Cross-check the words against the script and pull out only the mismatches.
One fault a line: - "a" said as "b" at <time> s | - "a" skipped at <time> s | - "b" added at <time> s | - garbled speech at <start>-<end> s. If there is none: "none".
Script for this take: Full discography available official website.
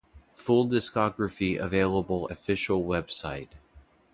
none